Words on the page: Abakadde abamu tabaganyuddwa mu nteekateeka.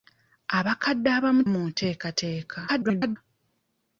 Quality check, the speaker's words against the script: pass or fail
fail